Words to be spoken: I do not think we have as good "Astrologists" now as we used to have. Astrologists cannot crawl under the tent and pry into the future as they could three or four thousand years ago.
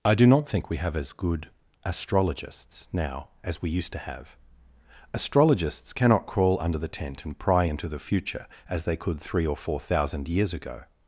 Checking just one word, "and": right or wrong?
right